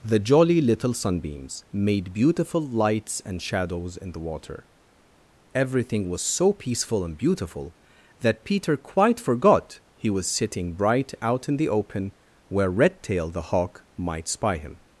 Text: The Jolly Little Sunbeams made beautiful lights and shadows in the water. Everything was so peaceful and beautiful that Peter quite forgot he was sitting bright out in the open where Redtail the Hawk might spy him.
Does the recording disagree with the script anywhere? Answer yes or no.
no